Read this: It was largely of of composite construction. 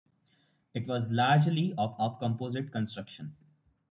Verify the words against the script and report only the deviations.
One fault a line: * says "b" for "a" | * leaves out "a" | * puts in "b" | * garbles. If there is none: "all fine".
all fine